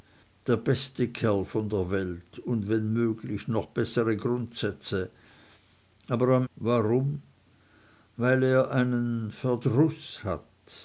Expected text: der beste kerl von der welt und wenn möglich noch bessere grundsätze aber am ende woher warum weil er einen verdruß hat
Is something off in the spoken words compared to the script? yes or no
yes